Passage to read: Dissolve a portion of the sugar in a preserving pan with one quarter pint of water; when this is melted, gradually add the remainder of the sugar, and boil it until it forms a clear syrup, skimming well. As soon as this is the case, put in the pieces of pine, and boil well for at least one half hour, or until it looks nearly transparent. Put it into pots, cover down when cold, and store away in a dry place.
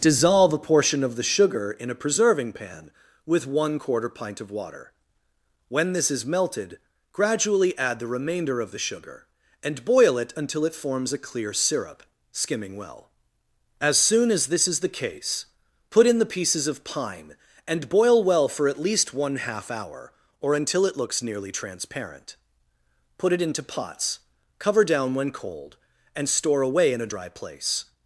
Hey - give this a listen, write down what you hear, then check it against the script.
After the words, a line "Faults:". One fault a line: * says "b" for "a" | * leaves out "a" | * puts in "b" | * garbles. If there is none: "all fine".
Dissolve a portion of the sugar in a preserving pan with one quarter pint of water; when this is melted, gradually add the remainder of the sugar, and boil it until it forms a clear syrup, skimming well. As soon as this is the case, put in the pieces of pine, and boil well for at least one half hour, or until it looks nearly transparent. Put it into pots, cover down when cold, and store away in a dry place.
Faults:
all fine